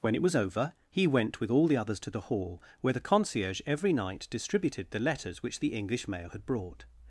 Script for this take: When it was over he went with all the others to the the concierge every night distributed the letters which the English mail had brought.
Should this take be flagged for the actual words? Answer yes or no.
yes